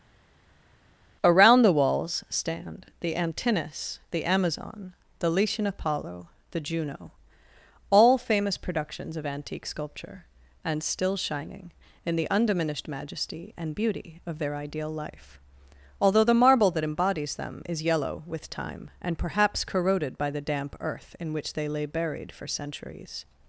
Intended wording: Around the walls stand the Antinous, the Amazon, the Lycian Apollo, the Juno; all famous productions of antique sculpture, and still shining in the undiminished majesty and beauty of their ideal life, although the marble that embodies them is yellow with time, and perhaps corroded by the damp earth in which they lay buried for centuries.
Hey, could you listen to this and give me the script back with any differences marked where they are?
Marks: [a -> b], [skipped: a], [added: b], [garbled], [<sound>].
Around the walls stand the Antinous, the Amazon, the Lycian Apollo, the Juno; all famous productions of antique sculpture, and still shining in the undiminished majesty and beauty of their ideal life, although the marble that embodies them is yellow with time, and perhaps corroded by the damp earth in which they lay buried for centuries.